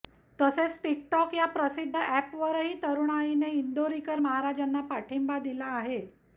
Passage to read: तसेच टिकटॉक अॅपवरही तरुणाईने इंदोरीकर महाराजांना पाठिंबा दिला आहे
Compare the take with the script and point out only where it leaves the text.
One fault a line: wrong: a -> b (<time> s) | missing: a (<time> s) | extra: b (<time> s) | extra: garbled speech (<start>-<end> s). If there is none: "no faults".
extra: या प्रसिद्ध (1.3 s)